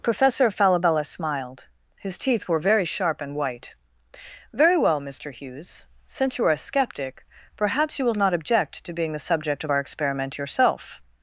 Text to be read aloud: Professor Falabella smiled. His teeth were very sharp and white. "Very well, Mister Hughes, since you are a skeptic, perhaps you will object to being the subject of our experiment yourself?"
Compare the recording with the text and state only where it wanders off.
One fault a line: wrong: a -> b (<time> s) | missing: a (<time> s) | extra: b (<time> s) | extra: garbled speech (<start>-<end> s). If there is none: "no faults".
extra: not (8.2 s)